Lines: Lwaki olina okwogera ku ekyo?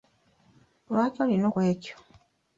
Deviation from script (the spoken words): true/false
true